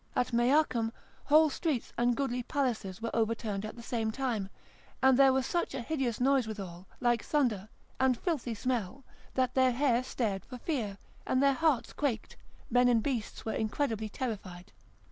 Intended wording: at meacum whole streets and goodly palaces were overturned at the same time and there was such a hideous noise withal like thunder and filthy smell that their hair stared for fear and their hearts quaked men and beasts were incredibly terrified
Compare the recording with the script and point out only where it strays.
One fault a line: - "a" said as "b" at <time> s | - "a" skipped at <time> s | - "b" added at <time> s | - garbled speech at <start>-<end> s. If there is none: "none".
none